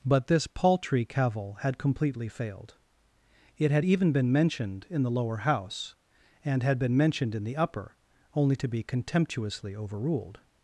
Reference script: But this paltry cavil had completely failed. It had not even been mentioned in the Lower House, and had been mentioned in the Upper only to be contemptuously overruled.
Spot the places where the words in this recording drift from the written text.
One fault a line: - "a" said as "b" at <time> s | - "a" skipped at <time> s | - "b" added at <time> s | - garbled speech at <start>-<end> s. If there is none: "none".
- "not" skipped at 3.9 s